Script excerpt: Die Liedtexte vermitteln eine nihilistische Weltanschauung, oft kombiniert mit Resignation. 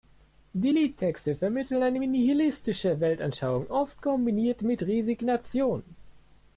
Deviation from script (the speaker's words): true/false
false